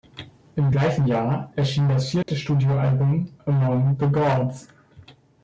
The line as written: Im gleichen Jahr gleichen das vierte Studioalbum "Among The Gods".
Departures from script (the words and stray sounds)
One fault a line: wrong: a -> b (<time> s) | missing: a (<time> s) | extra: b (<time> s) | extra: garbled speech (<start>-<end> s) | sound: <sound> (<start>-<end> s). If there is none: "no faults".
wrong: gleichen -> erschien (1.6 s)
sound: dropout (2.2-2.3 s)